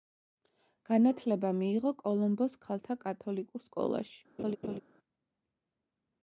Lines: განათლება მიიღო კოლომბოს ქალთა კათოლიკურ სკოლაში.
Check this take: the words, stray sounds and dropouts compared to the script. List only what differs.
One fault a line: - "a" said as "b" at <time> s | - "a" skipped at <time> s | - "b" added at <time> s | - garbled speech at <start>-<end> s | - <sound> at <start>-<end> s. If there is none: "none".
- laugh at 4.4-4.8 s